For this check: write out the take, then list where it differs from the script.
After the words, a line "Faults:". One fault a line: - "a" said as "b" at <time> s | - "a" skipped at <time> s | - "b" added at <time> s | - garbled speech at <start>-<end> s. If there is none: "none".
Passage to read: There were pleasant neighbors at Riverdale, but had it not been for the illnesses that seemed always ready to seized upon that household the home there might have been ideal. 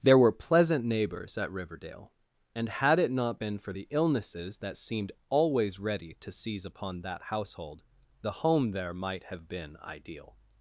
There were pleasant neighbors at Riverdale, and had it not been for the illnesses that seemed always ready to seize upon that household the home there might have been ideal.
Faults:
- "but" said as "and" at 2.5 s
- "seized" said as "seize" at 6.3 s